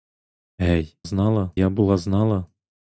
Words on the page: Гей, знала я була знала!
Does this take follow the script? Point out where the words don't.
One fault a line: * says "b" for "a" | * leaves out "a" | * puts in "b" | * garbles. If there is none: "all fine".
all fine